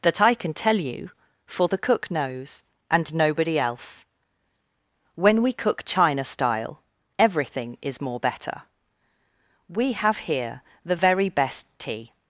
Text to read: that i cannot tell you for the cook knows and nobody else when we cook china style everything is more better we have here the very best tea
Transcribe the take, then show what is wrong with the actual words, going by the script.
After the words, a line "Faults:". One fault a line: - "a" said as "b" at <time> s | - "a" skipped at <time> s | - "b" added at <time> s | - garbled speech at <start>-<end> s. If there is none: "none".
that i can tell you for the cook knows and nobody else when we cook china style everything is more better we have here the very best tea
Faults:
- "cannot" said as "can" at 0.3 s